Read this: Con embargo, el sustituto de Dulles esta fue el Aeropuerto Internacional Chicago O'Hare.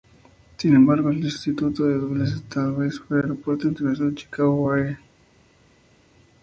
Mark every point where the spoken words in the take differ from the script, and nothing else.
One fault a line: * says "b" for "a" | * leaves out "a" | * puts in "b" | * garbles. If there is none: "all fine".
* says "Sin" for "Con"
* puts in "vez"